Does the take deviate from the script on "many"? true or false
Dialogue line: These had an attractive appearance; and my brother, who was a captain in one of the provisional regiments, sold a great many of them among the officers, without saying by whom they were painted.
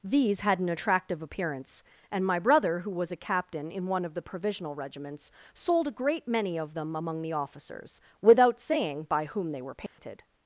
false